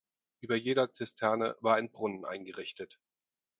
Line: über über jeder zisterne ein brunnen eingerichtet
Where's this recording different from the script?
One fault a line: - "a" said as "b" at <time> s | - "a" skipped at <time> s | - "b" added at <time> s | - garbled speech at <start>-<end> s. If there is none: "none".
- "über" skipped at 0.6 s
- "war" added at 1.6 s